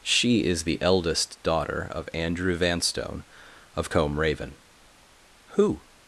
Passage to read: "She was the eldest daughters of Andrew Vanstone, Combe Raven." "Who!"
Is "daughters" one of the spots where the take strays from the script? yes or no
yes